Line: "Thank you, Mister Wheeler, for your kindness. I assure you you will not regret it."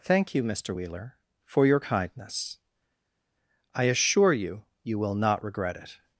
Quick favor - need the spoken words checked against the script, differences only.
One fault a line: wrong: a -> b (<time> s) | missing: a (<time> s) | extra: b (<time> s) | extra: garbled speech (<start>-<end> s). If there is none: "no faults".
no faults